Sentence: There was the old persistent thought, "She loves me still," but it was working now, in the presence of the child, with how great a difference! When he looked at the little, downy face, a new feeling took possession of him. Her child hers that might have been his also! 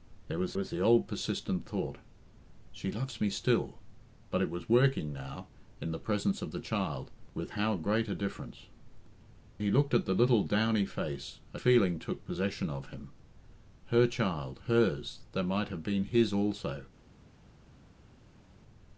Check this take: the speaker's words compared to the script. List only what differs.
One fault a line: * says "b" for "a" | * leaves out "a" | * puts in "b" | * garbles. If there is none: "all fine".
* puts in "was"
* leaves out "When"
* leaves out "new"